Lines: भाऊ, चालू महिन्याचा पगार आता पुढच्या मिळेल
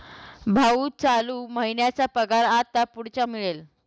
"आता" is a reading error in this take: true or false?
false